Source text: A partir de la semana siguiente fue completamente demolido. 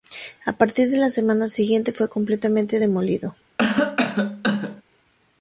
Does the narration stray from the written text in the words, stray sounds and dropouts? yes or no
yes